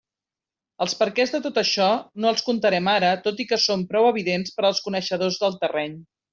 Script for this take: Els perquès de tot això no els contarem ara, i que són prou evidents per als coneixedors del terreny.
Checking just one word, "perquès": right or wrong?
right